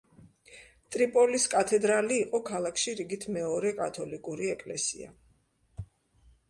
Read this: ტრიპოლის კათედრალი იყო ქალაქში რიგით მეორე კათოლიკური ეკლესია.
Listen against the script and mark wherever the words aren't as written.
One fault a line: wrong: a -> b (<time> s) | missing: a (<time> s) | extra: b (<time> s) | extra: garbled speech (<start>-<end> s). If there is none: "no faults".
no faults